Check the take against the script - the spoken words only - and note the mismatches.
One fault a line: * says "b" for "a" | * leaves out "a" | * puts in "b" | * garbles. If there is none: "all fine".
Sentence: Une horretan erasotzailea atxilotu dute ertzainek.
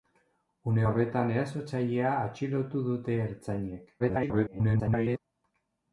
* garbles